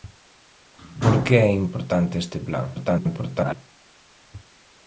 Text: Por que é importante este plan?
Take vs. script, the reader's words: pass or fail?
fail